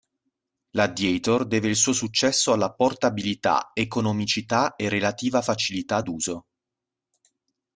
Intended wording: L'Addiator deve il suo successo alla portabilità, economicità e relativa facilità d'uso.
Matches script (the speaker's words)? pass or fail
pass